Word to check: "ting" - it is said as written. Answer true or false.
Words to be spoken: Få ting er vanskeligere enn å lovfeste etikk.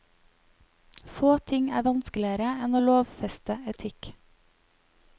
true